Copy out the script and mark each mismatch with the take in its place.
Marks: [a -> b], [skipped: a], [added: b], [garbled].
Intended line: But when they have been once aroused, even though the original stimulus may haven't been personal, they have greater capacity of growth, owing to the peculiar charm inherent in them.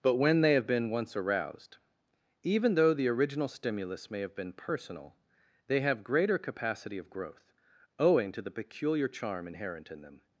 But when they have been once aroused, even though the original stimulus may [haven't -> have] been personal, they have greater capacity of growth, owing to the peculiar charm inherent in them.